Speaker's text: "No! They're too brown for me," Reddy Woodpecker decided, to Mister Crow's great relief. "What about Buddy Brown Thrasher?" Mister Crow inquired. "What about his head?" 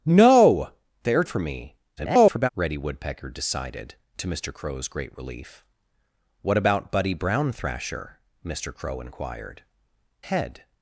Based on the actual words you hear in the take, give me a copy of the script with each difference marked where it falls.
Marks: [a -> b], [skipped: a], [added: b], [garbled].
"No! They're [skipped: too brown] for me," [garbled] Reddy Woodpecker decided, to Mister Crow's great relief. "What about Buddy Brown Thrasher?" Mister Crow inquired. [skipped: "What about his] head?"